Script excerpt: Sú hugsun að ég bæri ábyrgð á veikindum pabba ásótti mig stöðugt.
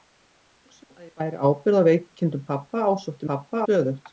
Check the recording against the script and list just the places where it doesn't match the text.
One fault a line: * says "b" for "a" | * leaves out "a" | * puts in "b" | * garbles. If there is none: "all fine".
* says "pabba" for "mig"